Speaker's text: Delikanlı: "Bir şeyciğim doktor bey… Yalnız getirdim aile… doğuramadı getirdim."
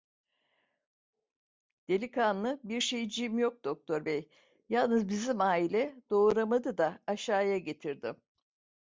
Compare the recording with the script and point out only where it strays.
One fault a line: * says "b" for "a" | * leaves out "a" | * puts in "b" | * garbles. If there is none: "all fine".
* puts in "yok"
* says "bizim" for "getirdim"
* puts in "da Aşağıya"